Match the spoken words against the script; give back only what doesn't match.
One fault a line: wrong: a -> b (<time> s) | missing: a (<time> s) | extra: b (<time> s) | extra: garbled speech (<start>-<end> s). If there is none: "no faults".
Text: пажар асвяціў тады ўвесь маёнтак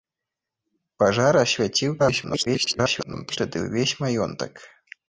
extra: garbled speech (2.0-3.4 s)